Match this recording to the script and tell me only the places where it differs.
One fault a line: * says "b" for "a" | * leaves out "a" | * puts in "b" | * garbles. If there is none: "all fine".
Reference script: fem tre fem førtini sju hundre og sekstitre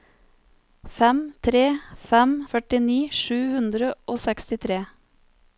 all fine